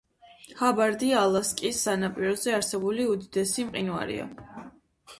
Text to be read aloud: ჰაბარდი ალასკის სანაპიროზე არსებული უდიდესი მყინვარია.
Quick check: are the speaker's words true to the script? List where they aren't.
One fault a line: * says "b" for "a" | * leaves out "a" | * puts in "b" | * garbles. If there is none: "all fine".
all fine